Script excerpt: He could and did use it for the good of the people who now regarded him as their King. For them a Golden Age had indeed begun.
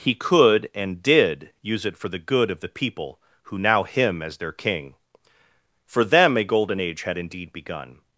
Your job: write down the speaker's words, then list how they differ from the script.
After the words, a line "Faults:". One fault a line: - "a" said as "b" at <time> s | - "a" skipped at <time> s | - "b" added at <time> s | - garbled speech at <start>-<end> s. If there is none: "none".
He could and did use it for the good of the people who now him as their King. For them a Golden Age had indeed begun.
Faults:
- "regarded" skipped at 3.8 s